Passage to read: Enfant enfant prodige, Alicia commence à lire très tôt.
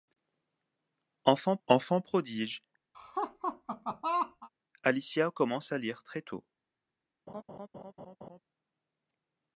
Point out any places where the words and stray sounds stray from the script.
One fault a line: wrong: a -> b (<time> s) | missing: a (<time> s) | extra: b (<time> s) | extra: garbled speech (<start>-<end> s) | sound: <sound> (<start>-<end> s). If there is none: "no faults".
sound: laugh (2.9-4.5 s)
sound: laugh (7.3-8.4 s)